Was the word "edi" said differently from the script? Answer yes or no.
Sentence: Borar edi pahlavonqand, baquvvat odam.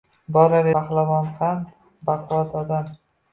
yes